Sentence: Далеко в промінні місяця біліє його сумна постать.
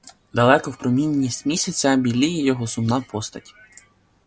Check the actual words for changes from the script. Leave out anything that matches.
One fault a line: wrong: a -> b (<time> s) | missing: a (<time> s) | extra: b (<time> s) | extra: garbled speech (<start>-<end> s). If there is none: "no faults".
no faults